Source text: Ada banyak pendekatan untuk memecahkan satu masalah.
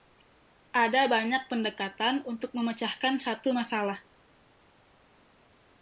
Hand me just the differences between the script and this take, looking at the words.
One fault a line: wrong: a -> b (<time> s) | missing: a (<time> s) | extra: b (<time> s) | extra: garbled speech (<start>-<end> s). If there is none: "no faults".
no faults